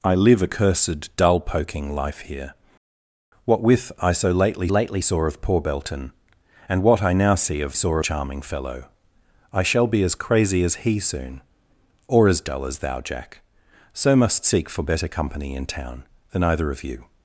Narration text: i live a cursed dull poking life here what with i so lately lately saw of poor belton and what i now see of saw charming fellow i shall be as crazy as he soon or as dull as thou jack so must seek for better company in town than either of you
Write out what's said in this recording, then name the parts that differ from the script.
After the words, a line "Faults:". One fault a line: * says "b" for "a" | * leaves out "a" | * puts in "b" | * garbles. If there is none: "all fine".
i live a cursed dull poking life here what with i so lately lately saw of poor belton and what i now see of saw charming fellow i shall be as crazy as he soon or as dull as thou jack so must seek for better company in town than either of you
Faults:
all fine